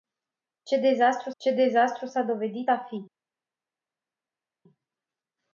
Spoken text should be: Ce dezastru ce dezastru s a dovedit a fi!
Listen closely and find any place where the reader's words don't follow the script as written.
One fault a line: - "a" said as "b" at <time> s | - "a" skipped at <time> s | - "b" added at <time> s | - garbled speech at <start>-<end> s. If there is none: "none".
none